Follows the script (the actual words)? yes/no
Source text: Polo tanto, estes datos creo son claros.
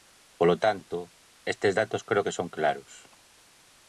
no